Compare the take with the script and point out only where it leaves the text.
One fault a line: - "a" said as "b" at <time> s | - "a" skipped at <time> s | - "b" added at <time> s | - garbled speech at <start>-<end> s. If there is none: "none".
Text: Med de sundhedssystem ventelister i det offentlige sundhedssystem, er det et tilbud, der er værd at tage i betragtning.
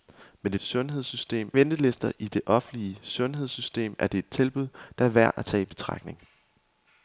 none